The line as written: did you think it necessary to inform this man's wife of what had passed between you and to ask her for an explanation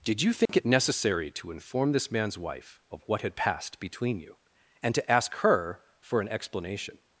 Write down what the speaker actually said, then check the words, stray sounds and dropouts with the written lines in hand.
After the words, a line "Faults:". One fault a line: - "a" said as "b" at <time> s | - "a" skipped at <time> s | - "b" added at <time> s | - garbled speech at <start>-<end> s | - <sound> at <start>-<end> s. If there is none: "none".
did you think it necessary to inform this man's wife of what had passed between you and to ask her for an explanation
Faults:
- dropout at 0.5-0.5 s